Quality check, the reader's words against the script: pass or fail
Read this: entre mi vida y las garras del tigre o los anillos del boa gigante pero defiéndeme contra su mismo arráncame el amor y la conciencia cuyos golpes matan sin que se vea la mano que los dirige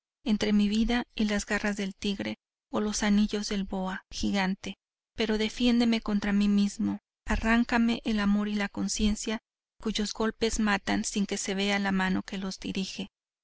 fail